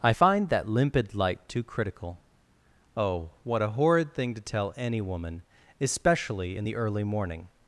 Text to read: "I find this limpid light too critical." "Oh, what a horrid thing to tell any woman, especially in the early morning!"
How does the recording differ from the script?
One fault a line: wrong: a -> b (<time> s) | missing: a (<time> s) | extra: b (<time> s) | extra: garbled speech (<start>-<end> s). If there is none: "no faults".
wrong: this -> that (0.5 s)